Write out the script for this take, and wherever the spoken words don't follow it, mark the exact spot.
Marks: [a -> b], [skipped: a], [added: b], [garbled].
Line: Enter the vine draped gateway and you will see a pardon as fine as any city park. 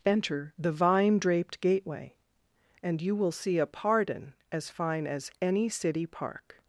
Enter the vine draped gateway and you will see a pardon as fine as any city park.